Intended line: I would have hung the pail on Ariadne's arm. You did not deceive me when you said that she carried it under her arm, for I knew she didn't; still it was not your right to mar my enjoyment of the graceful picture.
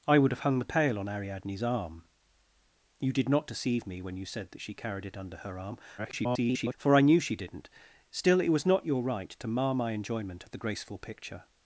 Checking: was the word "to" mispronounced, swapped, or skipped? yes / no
no